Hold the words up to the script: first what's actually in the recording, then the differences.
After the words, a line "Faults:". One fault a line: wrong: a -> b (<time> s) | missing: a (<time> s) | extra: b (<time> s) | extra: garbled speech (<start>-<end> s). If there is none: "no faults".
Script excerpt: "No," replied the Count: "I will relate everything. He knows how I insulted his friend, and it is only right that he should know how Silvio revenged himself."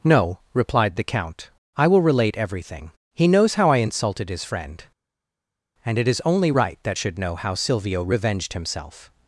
"No," replied the Count: "I will relate everything. He knows how I insulted his friend, and it is only right that should know how Silvio revenged himself."
Faults:
missing: he (7.0 s)